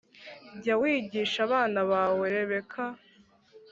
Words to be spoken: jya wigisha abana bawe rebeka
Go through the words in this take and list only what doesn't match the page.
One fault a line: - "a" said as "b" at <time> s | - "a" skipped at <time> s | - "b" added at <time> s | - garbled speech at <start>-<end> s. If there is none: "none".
none